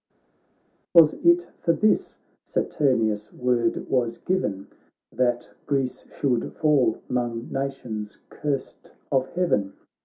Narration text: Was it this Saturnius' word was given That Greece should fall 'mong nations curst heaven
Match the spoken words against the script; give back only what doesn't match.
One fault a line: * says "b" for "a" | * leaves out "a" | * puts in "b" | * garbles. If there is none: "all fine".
* puts in "for"
* puts in "of"